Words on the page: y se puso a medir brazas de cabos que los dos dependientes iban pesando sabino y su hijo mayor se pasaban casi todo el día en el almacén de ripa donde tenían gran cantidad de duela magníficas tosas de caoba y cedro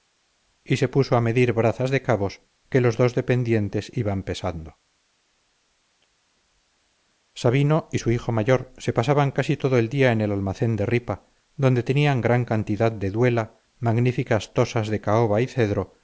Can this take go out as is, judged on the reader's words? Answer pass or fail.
pass